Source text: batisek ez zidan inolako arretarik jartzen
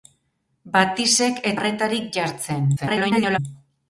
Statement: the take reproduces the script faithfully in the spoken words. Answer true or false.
false